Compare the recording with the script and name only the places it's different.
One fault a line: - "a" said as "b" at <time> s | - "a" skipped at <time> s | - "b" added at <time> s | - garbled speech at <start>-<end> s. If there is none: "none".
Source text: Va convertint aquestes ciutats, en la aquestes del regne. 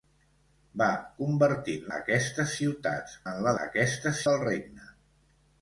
none